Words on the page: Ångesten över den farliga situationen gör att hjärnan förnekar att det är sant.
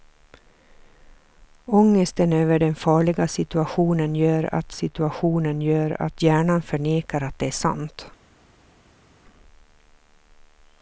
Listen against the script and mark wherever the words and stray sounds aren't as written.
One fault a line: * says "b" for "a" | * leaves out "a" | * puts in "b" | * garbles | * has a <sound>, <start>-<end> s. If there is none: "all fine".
* puts in "situationen gör att"